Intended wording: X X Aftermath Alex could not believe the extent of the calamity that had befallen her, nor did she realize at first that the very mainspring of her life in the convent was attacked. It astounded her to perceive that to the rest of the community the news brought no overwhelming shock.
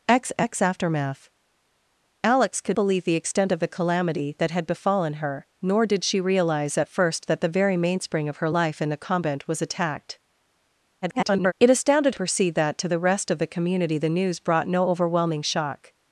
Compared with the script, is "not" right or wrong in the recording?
wrong